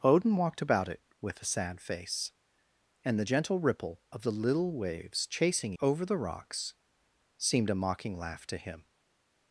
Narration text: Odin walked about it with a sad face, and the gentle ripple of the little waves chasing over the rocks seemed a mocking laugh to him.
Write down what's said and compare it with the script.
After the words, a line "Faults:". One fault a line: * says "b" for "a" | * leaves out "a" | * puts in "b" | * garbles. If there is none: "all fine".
Odin walked about it with a sad face, and the gentle ripple of the little waves chasing over the rocks seemed a mocking laugh to him.
Faults:
all fine